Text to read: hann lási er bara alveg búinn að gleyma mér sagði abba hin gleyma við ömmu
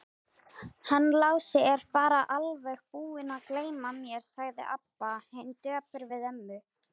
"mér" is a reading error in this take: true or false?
false